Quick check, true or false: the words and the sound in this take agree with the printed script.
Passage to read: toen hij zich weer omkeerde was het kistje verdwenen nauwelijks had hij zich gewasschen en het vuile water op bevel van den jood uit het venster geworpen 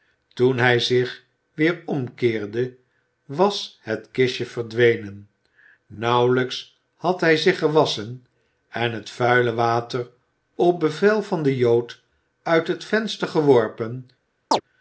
false